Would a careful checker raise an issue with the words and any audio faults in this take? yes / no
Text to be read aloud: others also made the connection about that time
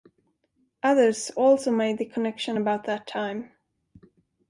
no